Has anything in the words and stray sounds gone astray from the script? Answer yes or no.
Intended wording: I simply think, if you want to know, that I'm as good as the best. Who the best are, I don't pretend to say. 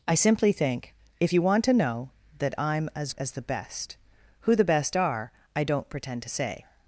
yes